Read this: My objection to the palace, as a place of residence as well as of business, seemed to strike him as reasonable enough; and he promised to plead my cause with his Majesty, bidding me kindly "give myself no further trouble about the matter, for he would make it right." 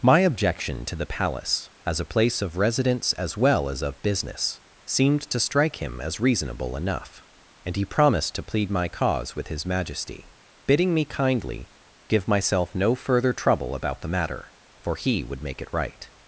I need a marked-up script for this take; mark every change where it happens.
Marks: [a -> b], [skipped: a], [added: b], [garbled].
My objection to the palace, as a place of residence as well as of business, seemed to strike him as reasonable enough; and he promised to plead my cause with his Majesty, bidding me kindly "give myself no further trouble about the matter, for he would make it right."